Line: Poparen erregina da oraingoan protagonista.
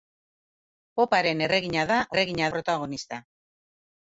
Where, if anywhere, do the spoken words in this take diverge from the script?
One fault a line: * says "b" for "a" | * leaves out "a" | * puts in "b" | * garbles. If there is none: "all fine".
* says "erregina" for "oraingoan"